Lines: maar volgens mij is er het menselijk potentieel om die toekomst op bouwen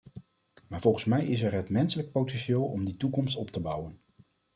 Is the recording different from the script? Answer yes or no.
yes